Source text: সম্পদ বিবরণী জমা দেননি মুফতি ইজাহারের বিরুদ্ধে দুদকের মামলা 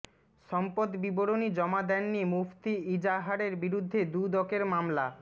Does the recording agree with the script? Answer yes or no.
yes